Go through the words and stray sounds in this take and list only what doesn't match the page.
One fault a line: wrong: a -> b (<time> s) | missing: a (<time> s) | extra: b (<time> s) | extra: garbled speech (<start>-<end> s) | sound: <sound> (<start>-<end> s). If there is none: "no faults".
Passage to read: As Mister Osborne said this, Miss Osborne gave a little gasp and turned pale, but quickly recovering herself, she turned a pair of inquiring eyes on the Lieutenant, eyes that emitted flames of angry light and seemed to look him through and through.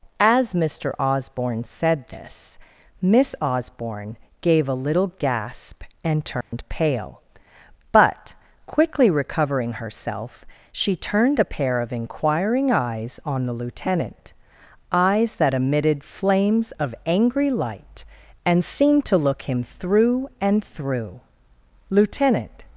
sound: dropout (6.4-6.5 s)
extra: Lieutenant (21.9 s)